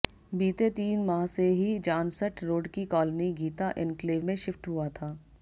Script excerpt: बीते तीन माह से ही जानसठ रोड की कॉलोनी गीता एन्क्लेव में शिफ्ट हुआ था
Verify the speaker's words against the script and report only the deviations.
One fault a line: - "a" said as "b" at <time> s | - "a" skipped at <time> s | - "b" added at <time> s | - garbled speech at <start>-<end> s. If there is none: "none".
none